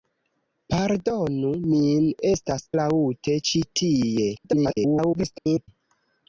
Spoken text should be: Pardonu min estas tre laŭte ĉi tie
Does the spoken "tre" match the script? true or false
false